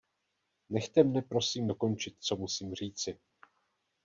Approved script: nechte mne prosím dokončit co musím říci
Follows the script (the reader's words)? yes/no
yes